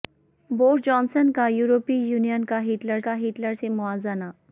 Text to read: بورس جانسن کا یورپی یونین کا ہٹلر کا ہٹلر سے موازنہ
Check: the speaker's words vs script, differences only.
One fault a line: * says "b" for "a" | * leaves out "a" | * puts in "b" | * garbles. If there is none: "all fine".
all fine